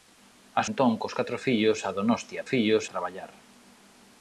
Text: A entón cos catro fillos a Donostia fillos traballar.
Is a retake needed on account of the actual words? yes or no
no